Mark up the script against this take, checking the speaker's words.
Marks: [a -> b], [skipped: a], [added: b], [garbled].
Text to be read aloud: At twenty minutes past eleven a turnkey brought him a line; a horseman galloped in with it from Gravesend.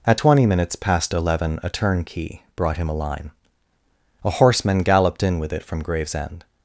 At twenty minutes past eleven a turnkey brought him a line; a horseman galloped in with it from Gravesend.